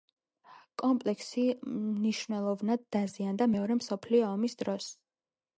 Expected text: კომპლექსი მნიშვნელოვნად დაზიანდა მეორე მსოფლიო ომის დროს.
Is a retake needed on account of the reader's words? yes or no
no